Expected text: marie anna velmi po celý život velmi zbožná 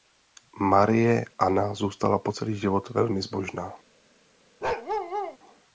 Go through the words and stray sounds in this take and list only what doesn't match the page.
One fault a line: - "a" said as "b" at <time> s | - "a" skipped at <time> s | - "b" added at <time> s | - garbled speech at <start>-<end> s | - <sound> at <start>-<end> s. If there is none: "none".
- "velmi" said as "zůstala" at 1.7 s
- bark at 4.6-5.4 s